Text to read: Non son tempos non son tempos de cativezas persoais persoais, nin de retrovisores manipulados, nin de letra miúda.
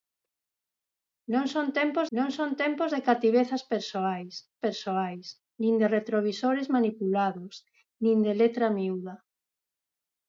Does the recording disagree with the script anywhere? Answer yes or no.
no